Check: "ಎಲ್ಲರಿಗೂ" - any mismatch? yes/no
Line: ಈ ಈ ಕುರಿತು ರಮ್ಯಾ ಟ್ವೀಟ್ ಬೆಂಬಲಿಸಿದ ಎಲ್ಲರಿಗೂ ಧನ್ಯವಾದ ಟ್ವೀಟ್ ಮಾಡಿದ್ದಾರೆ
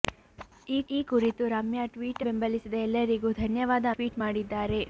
no